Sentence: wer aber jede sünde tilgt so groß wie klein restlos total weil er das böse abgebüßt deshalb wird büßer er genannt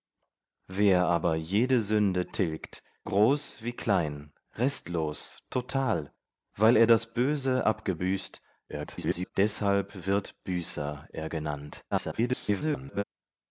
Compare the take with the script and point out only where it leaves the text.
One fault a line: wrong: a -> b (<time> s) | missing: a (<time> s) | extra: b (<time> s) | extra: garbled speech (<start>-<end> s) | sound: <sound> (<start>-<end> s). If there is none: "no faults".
missing: so (2.8 s)
extra: garbled speech (8.7-9.3 s)
extra: garbled speech (11.9-13.0 s)